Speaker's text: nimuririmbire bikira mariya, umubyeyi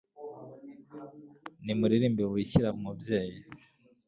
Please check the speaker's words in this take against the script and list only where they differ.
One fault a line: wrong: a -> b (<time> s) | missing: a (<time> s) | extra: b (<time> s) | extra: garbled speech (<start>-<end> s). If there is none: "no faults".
missing: mariya (2.7 s)